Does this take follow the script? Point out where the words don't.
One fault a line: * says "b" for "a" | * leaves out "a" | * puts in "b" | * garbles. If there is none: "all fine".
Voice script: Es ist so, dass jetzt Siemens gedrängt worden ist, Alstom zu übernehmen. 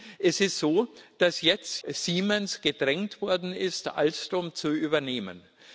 all fine